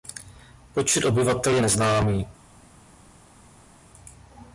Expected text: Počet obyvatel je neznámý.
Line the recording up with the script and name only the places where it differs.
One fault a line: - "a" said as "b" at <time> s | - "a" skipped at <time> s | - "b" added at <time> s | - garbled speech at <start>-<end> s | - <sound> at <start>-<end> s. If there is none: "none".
none